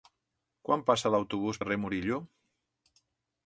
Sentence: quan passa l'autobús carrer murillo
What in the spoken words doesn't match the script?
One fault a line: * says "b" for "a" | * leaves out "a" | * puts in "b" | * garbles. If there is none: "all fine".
all fine